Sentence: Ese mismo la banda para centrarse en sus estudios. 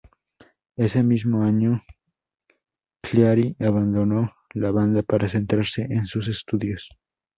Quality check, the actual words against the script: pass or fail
fail